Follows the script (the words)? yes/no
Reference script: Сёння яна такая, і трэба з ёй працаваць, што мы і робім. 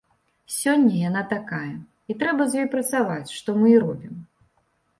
yes